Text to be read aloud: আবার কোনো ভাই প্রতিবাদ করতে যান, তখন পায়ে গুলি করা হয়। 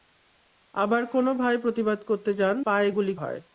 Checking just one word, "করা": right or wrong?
wrong